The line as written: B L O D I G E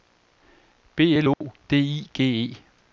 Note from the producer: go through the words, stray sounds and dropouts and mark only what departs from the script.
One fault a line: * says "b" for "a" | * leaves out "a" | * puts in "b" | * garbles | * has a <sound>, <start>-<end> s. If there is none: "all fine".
* has a dropout, 1.3-1.4 s